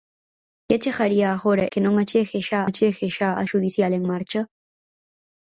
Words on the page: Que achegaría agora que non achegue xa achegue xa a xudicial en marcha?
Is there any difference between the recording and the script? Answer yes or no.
no